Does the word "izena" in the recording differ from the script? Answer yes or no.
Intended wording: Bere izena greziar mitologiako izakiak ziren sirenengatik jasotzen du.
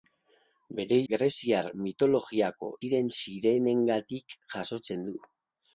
yes